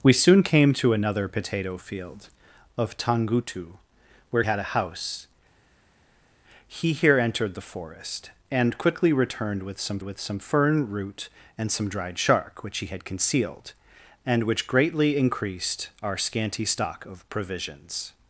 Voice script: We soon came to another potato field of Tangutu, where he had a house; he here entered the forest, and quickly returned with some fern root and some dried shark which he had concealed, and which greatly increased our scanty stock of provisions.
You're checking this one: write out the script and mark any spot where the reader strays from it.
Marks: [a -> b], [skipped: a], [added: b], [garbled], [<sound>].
We soon came to another potato field of Tangutu, where [skipped: he] had a house; he here entered the forest, and quickly returned with some [added: with some] fern root and some dried shark which he had concealed, and which greatly increased our scanty stock of provisions.